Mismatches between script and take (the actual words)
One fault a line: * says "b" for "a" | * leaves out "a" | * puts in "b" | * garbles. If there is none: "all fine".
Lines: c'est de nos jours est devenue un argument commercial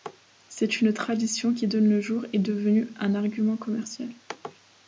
* puts in "une tradition qui"